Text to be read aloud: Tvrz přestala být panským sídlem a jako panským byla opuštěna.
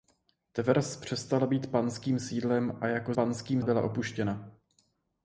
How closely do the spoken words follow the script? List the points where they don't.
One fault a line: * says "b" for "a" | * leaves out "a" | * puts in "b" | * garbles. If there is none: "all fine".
all fine